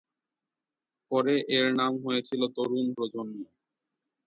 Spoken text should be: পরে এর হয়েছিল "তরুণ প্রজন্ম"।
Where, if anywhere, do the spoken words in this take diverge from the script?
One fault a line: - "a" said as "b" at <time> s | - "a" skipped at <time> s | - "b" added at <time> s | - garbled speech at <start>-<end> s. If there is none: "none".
- "নাম" added at 1.8 s